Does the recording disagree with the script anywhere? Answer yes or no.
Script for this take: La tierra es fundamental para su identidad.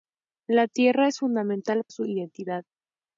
yes